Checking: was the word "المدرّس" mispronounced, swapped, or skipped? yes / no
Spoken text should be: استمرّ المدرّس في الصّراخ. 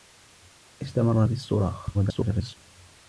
yes